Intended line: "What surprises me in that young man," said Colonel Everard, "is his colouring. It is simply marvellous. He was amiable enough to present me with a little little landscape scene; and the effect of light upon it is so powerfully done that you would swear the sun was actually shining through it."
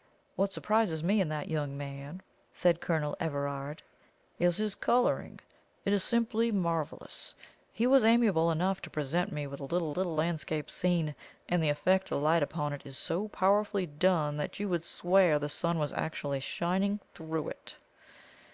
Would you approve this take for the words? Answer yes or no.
yes